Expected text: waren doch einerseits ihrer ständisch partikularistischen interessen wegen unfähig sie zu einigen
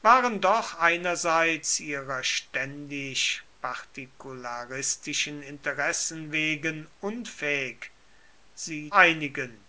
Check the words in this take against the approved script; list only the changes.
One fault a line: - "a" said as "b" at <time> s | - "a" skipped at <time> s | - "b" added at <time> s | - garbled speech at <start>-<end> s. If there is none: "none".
- "zu" skipped at 8.9 s